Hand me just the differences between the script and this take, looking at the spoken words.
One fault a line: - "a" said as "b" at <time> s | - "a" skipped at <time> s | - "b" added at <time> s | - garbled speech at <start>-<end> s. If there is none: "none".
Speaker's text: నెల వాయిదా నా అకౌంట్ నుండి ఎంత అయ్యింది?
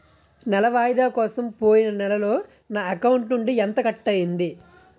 - "కోసం పోయిన నెలలో" added at 1.1 s
- "కట్" added at 3.8 s